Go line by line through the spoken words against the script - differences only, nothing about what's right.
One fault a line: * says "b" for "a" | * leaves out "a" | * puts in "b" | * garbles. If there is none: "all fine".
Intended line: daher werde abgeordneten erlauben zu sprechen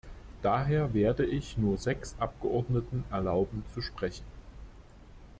* puts in "ich nur sechs"